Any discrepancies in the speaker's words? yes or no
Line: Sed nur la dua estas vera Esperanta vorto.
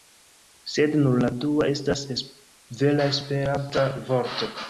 no